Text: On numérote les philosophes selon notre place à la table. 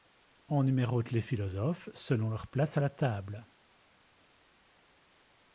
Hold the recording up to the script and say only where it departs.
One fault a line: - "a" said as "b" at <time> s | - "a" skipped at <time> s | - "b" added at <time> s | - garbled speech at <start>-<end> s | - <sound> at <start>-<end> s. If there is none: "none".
- "notre" said as "leur" at 2.3 s